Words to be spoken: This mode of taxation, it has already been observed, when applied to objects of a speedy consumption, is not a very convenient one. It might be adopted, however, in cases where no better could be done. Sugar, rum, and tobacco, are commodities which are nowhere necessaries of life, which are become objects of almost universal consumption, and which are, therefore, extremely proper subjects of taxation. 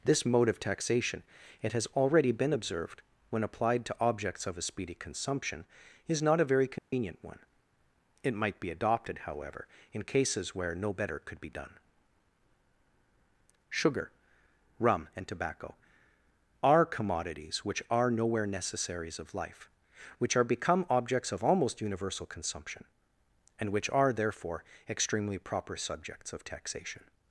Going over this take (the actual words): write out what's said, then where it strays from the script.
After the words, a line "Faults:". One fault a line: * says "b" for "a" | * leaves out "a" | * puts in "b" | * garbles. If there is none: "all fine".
This mode of taxation, it has already been observed, when applied to objects of a speedy consumption, is not a very convenient one. It might be adopted, however, in cases where no better could be done. Sugar, rum, and tobacco, are commodities which are nowhere necessaries of life, which are become objects of almost universal consumption, and which are, therefore, extremely proper subjects of taxation.
Faults:
all fine